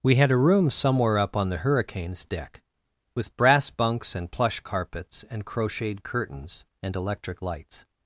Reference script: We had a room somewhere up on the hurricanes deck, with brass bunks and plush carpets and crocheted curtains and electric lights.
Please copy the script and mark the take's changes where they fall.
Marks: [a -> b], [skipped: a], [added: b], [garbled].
We had a room somewhere up on the hurricanes deck, with brass bunks and plush carpets and crocheted curtains and electric lights.